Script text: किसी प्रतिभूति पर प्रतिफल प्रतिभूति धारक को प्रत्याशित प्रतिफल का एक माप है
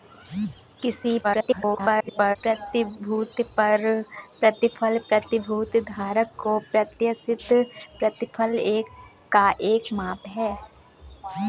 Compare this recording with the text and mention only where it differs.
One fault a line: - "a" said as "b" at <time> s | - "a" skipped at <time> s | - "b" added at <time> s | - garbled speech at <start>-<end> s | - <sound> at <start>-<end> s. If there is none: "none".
- garbled speech at 1.2-2.4 s